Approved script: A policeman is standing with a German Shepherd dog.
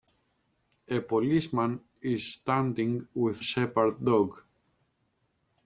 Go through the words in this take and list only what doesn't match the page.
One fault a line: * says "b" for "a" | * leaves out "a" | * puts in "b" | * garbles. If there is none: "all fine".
* leaves out "a German"